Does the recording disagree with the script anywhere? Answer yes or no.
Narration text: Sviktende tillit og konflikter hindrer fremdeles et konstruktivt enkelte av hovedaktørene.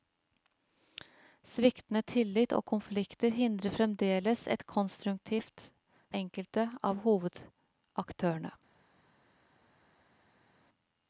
no